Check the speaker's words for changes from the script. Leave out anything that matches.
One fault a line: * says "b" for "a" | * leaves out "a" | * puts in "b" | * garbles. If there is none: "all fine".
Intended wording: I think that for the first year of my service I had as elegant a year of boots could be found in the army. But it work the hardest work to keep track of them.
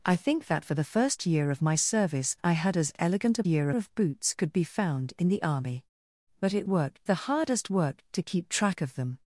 all fine